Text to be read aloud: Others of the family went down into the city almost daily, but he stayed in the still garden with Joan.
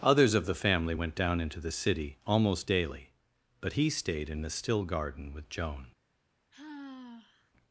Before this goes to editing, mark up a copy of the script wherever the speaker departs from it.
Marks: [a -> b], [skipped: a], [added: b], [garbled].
Others of the family went down into the city almost daily, but he stayed in the still garden with Joan.